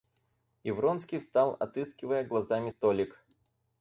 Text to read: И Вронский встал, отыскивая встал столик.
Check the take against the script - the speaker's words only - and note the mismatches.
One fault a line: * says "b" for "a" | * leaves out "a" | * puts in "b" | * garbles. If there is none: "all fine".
* says "глазами" for "встал"